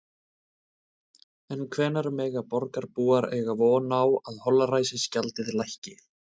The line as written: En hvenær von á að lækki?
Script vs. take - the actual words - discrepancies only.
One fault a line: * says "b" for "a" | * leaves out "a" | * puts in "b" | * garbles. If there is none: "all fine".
* puts in "mega borgarbúar eiga"
* puts in "holræsagjaldið"